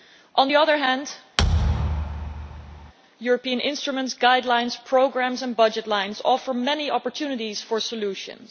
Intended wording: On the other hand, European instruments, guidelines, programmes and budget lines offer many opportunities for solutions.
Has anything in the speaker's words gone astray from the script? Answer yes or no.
no